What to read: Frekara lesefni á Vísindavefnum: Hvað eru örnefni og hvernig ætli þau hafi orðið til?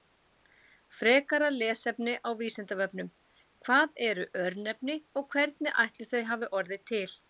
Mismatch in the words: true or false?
false